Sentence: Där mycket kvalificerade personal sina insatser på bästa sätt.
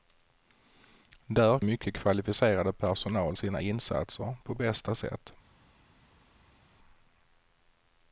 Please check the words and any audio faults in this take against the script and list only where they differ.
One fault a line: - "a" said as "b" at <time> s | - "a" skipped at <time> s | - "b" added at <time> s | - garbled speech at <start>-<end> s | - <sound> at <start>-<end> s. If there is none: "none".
none